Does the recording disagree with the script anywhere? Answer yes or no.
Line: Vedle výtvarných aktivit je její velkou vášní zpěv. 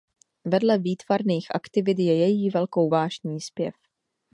no